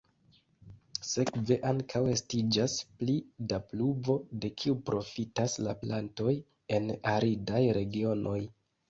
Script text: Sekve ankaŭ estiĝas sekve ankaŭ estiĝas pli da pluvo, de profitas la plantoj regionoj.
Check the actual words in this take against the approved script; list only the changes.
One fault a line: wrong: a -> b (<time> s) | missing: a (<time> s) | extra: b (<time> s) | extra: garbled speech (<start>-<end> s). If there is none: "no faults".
missing: sekve ankaŭ estiĝas (2.8 s)
extra: kiu (4.6 s)
extra: en aridaj (6.8 s)